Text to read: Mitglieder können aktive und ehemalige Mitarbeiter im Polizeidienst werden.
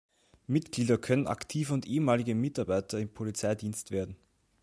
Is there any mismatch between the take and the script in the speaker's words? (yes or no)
no